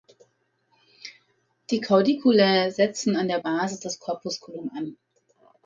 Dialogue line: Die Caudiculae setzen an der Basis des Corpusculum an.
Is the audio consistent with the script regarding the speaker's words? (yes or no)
yes